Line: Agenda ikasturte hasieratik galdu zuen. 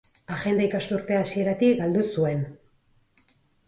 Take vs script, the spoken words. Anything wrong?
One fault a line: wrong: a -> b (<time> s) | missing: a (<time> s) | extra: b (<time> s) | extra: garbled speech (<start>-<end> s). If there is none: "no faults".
no faults